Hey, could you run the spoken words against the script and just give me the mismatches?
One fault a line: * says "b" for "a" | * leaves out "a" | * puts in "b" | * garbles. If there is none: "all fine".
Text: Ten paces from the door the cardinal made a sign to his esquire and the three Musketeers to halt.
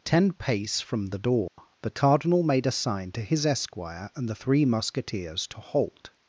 * says "pace" for "paces"